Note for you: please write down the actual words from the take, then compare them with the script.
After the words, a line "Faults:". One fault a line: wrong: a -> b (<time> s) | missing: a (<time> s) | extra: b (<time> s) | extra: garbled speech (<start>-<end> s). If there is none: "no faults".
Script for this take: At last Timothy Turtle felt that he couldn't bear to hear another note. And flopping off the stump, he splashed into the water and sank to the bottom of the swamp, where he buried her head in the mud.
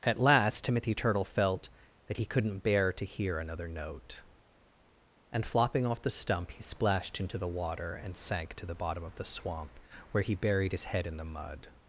At last Timothy Turtle felt that he couldn't bear to hear another note. And flopping off the stump, he splashed into the water and sank to the bottom of the swamp, where he buried his head in the mud.
Faults:
wrong: her -> his (10.7 s)